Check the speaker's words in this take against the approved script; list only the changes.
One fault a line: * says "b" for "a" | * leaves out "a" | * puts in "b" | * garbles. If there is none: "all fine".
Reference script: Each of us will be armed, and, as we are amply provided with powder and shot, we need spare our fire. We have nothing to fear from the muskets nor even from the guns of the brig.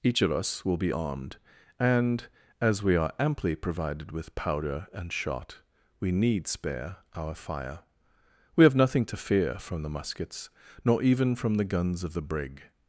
all fine